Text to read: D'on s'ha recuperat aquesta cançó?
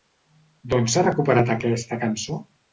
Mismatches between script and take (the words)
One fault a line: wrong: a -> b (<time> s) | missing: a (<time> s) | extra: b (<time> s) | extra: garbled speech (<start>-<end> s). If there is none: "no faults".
no faults